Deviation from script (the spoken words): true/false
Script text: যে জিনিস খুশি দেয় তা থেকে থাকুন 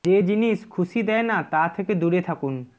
true